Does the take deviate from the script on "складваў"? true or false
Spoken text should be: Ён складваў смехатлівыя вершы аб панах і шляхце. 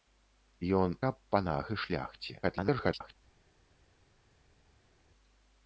true